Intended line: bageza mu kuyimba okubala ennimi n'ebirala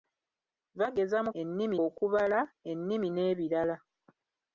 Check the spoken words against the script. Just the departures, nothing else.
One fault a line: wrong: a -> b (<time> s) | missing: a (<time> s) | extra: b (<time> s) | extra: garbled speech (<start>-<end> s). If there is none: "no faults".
wrong: kuyimba -> ennimi (1.4 s)